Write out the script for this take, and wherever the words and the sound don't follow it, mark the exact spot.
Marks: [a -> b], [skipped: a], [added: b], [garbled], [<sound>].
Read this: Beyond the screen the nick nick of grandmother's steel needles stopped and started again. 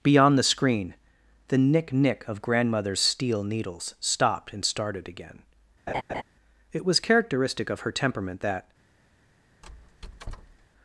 Beyond the screen the nick nick of grandmother's steel needles stopped and started again. [laugh] [added: It was characteristic of her temperament that] [squeak]